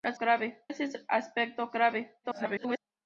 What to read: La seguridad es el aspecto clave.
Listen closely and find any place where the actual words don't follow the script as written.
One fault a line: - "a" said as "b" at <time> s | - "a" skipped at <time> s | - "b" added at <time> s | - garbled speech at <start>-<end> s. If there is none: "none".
- "seguridad" said as "clave" at 0.2 s
- garbled speech at 2.2-2.8 s